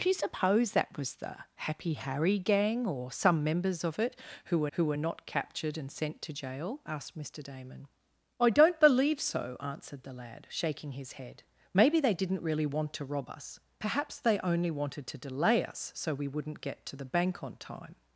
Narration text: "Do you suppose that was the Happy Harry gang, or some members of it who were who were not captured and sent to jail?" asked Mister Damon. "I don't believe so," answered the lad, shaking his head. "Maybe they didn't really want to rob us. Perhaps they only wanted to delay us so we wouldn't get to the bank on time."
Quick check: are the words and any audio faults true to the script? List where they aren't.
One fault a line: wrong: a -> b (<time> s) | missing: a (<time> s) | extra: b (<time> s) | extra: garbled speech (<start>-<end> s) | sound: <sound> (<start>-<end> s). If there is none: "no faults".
no faults